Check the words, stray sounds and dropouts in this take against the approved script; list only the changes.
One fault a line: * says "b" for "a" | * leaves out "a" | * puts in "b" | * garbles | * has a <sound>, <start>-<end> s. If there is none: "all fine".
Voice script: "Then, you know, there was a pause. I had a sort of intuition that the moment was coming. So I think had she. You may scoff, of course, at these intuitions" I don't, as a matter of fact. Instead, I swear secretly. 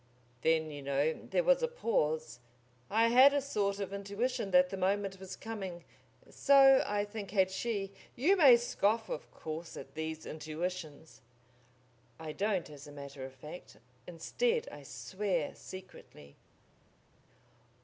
all fine